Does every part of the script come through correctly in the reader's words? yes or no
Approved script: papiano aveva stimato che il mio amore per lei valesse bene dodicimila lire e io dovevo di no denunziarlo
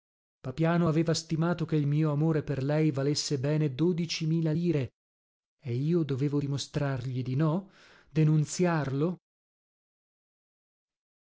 no